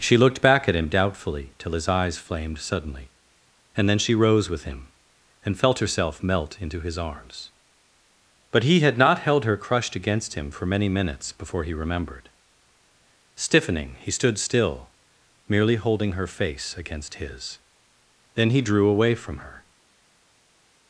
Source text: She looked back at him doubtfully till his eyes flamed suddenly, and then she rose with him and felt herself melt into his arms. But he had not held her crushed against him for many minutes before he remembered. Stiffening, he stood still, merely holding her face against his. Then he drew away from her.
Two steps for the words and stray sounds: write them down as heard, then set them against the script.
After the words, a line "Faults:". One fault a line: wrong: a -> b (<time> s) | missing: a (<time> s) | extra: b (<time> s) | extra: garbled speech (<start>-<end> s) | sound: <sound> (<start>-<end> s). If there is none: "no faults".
She looked back at him doubtfully till his eyes flamed suddenly, and then she rose with him and felt herself melt into his arms. But he had not held her crushed against him for many minutes before he remembered. Stiffening, he stood still, merely holding her face against his. Then he drew away from her.
Faults:
no faults